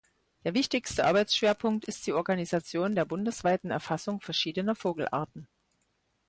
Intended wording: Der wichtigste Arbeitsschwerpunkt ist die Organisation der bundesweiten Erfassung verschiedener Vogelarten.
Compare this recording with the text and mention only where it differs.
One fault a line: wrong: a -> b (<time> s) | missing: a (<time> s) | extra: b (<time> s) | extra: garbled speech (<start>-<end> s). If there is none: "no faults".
no faults